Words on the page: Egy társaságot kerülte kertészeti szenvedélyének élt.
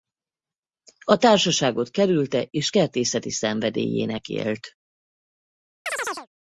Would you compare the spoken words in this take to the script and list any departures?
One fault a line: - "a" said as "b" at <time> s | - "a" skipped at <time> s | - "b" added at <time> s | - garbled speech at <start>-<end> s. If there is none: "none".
- "Egy" said as "A" at 1.1 s
- "és" added at 2.5 s